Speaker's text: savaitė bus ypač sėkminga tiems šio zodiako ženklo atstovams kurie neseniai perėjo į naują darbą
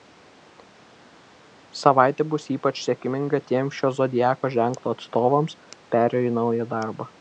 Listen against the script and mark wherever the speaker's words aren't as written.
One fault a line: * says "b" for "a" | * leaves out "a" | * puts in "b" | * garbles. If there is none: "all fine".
* leaves out "kurie neseniai"